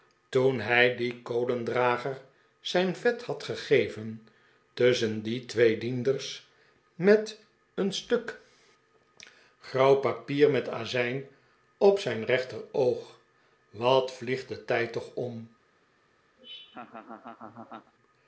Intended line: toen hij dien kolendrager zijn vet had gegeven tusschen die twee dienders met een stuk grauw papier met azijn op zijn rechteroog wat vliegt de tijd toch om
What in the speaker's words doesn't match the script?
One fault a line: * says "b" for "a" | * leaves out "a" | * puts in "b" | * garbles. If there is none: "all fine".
all fine